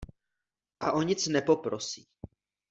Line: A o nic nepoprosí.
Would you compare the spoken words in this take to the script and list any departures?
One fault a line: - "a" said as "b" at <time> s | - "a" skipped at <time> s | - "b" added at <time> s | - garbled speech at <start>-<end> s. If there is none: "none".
none